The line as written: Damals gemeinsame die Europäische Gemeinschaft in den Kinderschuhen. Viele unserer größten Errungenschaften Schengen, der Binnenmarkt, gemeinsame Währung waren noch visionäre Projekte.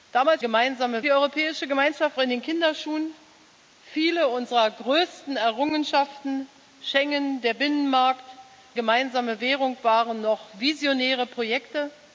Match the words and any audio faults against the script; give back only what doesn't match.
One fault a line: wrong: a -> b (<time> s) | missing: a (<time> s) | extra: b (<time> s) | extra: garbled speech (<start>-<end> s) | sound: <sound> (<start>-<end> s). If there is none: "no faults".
no faults